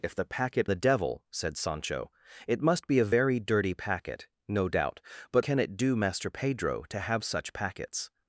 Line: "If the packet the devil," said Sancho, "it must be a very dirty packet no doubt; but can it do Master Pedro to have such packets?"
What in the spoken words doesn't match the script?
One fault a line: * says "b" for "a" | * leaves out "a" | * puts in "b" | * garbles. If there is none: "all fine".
all fine